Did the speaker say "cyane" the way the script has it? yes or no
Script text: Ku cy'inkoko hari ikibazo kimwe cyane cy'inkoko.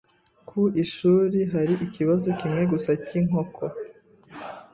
no